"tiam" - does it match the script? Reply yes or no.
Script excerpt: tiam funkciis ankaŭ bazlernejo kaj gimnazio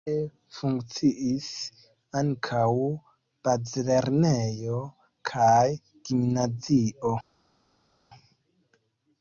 no